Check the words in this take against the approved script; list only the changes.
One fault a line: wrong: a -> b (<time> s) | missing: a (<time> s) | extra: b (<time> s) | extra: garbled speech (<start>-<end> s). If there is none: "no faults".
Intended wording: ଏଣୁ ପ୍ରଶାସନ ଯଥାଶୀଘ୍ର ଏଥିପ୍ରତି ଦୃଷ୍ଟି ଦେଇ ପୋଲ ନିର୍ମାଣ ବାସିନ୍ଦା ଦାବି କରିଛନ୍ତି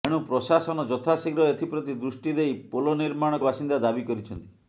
no faults